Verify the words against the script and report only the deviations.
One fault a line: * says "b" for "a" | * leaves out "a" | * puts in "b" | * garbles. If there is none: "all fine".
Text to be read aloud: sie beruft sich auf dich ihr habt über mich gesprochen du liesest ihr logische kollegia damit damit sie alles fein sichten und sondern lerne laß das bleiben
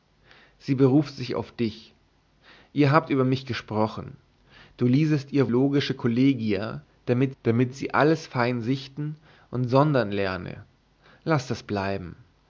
all fine